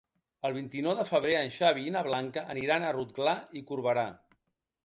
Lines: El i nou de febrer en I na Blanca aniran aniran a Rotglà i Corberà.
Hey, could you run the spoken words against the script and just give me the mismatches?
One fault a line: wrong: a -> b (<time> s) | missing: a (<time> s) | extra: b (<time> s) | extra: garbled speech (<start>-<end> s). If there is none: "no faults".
extra: vint (0.5 s)
extra: Xavi (1.6 s)
missing: aniran (2.9 s)